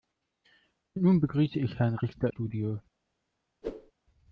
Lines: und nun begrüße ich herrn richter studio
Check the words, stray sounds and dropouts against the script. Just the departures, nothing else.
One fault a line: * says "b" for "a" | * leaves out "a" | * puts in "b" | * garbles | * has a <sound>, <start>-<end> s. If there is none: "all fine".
* has a whoosh, 3.6-3.9 s